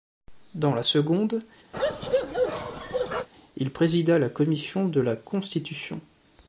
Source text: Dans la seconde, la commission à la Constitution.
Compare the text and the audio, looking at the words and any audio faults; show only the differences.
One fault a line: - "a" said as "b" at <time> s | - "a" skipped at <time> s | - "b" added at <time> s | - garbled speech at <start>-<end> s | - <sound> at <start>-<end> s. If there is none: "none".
- bark at 1.7-3.3 s
- "il présida" added at 3.5 s
- "à" said as "de" at 4.9 s